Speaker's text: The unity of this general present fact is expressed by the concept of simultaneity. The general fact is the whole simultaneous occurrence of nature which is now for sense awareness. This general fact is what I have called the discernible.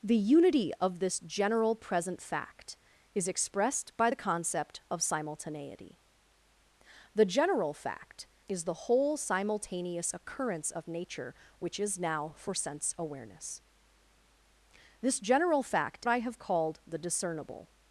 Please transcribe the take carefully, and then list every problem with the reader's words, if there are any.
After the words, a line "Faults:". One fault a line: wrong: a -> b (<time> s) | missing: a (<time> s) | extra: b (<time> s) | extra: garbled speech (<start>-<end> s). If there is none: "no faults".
The unity of this general present fact is expressed by the concept of simultaneity. The general fact is the whole simultaneous occurrence of nature which is now for sense awareness. This general fact I have called the discernible.
Faults:
missing: is what (16.1 s)